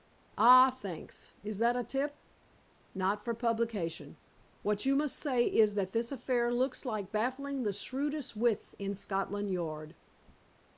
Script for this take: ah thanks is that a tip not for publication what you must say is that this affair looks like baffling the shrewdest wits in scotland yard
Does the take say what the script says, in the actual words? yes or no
yes